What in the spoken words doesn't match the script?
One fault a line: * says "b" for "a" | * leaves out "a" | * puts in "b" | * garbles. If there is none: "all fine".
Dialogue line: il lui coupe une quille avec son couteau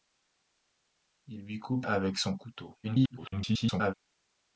* leaves out "une quille"
* garbles